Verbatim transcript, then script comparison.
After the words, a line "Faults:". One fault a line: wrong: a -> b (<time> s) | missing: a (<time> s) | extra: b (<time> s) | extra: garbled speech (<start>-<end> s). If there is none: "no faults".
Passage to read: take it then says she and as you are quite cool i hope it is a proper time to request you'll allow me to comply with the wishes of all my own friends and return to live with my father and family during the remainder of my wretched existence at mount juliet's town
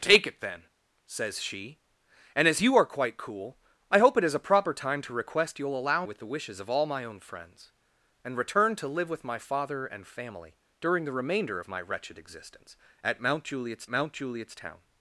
take it then says she and as you are quite cool i hope it is a proper time to request you'll allow with the wishes of all my own friends and return to live with my father and family during the remainder of my wretched existence at mount juliet's mount juliet's town
Faults:
missing: me to comply (6.0 s)
extra: mount juliet's (13.9 s)